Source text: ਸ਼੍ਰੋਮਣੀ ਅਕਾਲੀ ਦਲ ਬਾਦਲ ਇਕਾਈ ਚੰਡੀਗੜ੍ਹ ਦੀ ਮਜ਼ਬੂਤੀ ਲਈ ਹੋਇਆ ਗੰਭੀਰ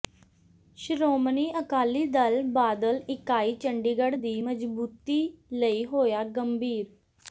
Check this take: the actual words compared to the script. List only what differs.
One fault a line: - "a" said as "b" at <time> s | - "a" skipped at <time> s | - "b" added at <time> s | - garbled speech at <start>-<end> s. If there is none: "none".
none